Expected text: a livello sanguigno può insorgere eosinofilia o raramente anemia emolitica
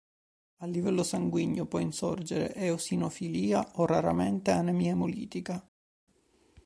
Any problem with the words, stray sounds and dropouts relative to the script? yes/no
no